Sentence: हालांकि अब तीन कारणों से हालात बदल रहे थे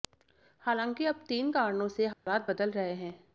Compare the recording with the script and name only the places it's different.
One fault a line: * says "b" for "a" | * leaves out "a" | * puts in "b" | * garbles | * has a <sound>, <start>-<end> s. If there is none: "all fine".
* has a dropout, 2.1-2.3 s
* says "हैं" for "थे"